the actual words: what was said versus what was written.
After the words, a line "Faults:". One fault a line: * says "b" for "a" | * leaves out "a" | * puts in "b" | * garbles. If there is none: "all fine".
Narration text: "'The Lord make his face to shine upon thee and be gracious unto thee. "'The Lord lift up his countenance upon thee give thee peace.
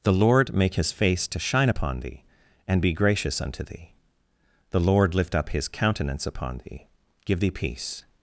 "'The Lord make his face to shine upon thee and be gracious unto thee. "'The Lord lift up his countenance upon thee give thee peace.
Faults:
all fine